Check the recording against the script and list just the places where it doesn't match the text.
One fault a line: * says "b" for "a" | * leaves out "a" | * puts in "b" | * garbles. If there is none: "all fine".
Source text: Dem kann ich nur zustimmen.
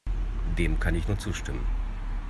all fine